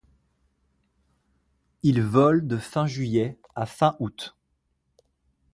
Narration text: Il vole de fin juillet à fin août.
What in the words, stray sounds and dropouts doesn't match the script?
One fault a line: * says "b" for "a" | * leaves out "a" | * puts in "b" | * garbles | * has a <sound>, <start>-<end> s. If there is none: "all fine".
all fine